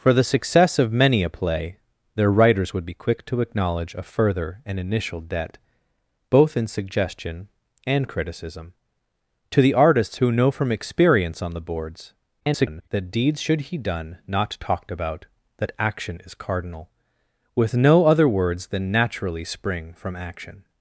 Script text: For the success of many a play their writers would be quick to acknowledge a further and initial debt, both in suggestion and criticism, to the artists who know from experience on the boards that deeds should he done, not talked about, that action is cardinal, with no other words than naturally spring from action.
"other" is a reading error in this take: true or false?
false